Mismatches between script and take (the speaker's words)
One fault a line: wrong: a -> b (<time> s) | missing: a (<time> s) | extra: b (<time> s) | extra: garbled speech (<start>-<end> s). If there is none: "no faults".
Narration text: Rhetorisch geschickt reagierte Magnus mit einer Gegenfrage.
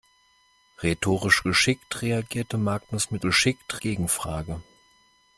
wrong: einer -> geschickt (3.2 s)